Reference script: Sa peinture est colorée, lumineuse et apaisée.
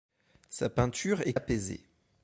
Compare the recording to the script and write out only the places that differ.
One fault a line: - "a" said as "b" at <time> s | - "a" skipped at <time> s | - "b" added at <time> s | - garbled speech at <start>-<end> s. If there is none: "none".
- "colorée lumineuse et" skipped at 1.4 s